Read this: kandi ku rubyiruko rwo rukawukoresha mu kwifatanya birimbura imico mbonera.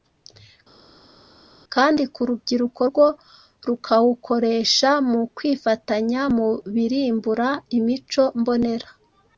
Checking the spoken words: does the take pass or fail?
fail